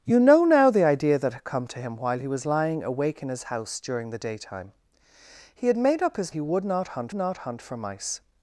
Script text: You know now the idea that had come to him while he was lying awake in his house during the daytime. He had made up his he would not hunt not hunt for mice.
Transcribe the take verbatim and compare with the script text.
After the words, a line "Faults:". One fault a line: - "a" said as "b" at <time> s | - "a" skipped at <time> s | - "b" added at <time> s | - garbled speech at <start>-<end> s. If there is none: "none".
You know now the idea that had come to him while he was lying awake in his house during the daytime. He had made up his he would not hunt not hunt for mice.
Faults:
none